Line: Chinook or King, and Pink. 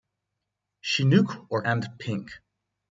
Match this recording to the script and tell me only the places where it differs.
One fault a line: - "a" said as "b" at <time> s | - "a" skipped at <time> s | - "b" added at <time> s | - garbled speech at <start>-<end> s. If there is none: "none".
- "King" skipped at 1.6 s